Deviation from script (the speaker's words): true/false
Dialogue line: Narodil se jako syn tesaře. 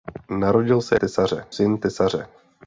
true